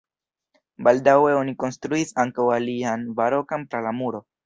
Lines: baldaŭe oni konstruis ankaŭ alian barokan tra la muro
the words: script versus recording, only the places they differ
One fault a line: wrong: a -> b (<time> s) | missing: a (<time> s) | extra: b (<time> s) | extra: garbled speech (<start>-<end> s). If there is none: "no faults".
no faults